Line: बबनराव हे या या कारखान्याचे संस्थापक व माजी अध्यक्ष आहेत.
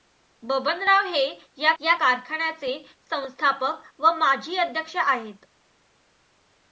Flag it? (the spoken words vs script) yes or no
no